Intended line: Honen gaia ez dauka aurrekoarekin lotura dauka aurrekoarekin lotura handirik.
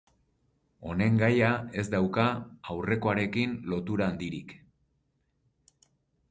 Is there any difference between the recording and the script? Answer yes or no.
yes